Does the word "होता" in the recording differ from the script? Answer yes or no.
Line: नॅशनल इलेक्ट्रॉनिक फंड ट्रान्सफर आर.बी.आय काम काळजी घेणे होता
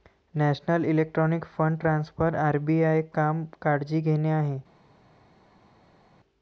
yes